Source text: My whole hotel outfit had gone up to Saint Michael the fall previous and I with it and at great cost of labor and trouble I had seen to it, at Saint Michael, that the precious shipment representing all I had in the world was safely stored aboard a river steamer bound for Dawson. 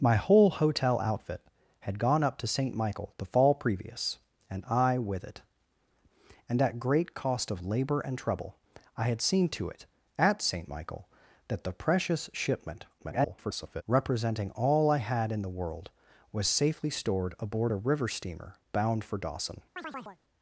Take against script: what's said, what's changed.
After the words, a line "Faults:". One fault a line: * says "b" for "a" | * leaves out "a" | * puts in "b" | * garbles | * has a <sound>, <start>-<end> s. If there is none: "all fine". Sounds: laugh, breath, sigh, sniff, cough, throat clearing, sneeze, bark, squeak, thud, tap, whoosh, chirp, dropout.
My whole hotel outfit had gone up to Saint Michael the fall previous and I with it and at great cost of labor and trouble I had seen to it, at Saint Michael, that the precious shipment [garbled] representing all I had in the world was safely stored aboard a river steamer bound for Dawson.
Faults:
* garbles
* has a chirp, 19.8-20.2 s